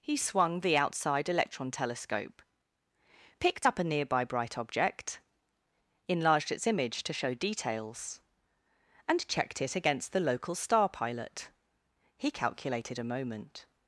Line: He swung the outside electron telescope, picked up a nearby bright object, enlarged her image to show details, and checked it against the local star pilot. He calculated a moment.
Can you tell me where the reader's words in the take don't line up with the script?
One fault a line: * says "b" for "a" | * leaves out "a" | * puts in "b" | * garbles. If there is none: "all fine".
* says "its" for "her"